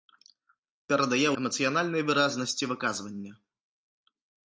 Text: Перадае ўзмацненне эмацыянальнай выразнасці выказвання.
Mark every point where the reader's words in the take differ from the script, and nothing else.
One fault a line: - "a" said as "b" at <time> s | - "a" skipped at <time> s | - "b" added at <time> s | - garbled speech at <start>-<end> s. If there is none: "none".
- "ўзмацненне" skipped at 1.3 s